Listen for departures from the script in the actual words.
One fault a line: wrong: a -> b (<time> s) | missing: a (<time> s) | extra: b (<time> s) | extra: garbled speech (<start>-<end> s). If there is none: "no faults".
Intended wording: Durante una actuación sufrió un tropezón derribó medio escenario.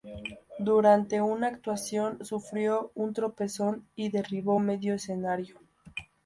extra: y (3.9 s)